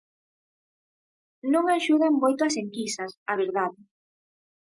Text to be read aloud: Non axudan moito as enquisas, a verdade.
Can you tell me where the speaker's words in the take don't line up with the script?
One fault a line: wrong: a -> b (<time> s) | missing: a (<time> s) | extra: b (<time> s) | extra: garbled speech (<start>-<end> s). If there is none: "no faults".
no faults